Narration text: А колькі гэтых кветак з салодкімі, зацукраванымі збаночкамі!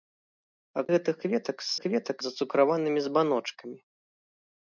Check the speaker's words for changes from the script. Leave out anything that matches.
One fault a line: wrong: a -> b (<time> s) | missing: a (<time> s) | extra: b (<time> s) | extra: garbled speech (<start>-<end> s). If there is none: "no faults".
missing: колькі (0.8 s)
wrong: салодкімі -> кветак (1.8 s)